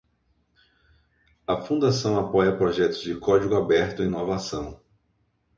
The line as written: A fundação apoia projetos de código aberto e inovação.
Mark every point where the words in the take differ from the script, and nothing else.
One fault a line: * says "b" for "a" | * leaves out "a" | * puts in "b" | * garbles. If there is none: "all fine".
all fine